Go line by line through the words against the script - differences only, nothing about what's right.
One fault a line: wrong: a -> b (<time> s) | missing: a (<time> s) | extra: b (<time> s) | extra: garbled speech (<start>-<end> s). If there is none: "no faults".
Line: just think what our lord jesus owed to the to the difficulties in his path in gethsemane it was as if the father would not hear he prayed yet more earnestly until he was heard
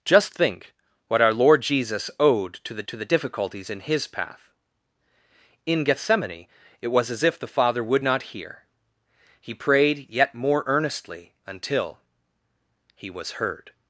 no faults